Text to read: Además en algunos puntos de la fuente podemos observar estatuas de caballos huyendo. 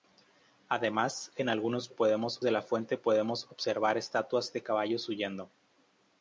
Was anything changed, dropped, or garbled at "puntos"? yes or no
yes